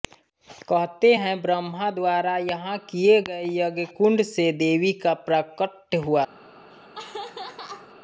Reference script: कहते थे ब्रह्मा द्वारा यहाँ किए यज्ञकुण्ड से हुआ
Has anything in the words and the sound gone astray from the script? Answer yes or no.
yes